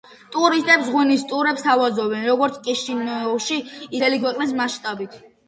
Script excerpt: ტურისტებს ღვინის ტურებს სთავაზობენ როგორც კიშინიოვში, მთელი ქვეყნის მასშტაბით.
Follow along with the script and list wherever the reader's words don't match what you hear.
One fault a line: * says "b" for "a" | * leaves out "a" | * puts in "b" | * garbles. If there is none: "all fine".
all fine